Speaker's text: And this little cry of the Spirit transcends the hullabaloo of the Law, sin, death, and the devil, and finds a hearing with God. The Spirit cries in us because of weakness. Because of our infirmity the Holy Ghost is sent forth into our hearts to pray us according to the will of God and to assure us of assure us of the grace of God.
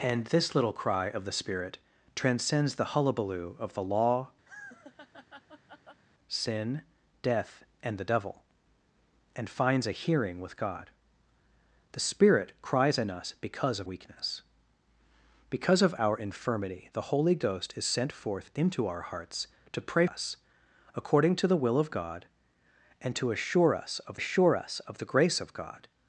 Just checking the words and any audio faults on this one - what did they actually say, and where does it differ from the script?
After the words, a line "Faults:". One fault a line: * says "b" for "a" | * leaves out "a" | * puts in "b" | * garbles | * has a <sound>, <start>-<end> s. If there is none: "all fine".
And this little cry of the Spirit transcends the hullabaloo of the Law, sin, death, and the devil, and finds a hearing with God. The Spirit cries in us because of weakness. Because of our infirmity the Holy Ghost is sent forth into our hearts to pray us according to the will of God and to assure us of assure us of the grace of God.
Faults:
* has a laugh, 4.5-6.0 s